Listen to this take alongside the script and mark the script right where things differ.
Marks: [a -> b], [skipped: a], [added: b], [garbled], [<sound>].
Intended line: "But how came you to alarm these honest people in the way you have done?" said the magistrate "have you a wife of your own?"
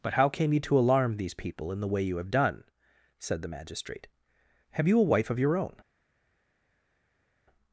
"But how came you to alarm these [skipped: honest] people in the way you have done?" said the magistrate "have you a wife of your own?"